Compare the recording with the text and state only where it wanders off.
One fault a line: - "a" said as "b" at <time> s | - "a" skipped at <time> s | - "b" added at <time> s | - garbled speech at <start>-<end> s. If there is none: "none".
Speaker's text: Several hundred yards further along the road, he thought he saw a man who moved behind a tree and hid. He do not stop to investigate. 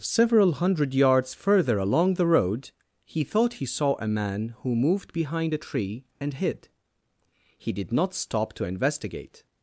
- "do" said as "did" at 7.7 s